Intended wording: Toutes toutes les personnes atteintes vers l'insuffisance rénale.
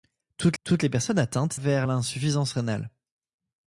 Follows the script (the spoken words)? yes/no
yes